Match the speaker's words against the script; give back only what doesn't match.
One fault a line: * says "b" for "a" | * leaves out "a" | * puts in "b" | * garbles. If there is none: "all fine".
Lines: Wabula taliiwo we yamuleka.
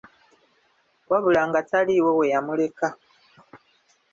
* puts in "nga"